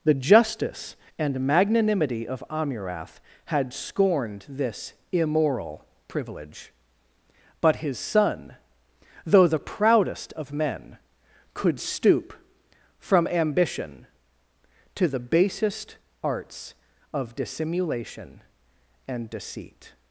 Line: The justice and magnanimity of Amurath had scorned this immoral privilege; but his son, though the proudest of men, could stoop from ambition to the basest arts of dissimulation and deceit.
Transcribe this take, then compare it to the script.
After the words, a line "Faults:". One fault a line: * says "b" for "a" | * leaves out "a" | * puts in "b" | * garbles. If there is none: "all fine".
The justice and magnanimity of Amurath had scorned this immoral privilege; but his son, though the proudest of men, could stoop from ambition to the basest arts of dissimulation and deceit.
Faults:
all fine